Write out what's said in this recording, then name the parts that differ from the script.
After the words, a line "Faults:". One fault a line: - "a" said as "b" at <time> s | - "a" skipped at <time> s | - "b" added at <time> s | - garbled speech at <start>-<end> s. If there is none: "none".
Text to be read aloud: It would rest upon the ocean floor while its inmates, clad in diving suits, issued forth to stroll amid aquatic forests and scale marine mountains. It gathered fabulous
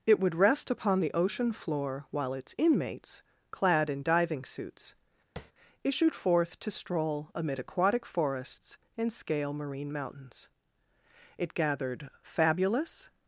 It would rest upon the ocean floor while its inmates, clad in diving suits, issued forth to stroll amid aquatic forests and scale marine mountains. It gathered fabulous
Faults:
none